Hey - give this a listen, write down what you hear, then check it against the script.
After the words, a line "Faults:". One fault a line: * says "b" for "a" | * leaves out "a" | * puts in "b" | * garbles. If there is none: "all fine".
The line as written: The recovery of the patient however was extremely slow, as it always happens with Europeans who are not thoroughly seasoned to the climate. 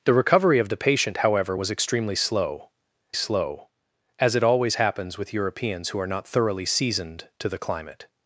The recovery of the patient however was extremely slow slow, as it always happens with Europeans who are not thoroughly seasoned to the climate.
Faults:
* puts in "slow"